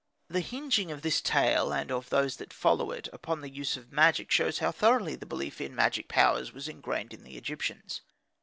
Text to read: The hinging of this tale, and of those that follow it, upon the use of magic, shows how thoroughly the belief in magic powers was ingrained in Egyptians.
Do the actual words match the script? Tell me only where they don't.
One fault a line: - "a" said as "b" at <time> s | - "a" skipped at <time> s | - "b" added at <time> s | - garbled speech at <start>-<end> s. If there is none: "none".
- "the" added at 7.2 s